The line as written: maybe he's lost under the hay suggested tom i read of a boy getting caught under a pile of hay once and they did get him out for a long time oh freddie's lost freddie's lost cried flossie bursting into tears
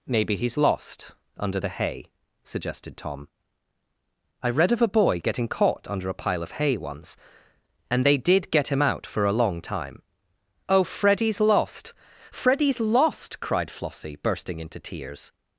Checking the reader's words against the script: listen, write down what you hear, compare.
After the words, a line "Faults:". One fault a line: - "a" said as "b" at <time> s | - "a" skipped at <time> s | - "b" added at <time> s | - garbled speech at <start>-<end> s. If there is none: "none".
maybe he's lost under the hay suggested tom i read of a boy getting caught under a pile of hay once and they did get him out for a long time oh freddie's lost freddie's lost cried flossie bursting into tears
Faults:
none